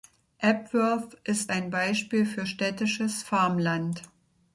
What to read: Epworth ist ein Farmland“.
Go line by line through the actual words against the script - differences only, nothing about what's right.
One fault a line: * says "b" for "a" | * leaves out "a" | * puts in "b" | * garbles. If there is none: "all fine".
* puts in "Beispiel für städtisches"